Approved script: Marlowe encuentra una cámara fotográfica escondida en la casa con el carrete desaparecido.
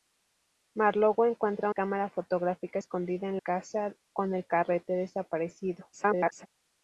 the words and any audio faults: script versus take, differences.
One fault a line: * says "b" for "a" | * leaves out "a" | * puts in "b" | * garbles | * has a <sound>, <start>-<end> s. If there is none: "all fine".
* leaves out "una"
* leaves out "la"
* garbles